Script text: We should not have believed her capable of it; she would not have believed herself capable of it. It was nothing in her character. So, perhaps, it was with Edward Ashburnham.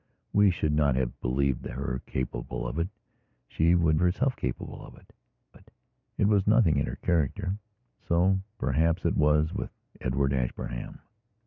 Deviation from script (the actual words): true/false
true